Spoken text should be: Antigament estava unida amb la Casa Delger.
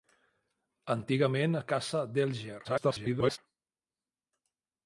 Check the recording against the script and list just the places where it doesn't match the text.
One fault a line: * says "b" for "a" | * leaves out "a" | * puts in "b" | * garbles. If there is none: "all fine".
* leaves out "estava unida amb"
* garbles